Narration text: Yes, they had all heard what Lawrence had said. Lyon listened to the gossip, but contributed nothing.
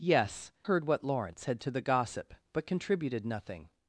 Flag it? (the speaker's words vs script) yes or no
yes